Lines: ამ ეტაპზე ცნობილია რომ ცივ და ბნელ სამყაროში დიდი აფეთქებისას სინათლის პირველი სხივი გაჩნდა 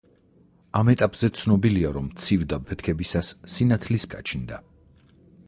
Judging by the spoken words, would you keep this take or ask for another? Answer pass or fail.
fail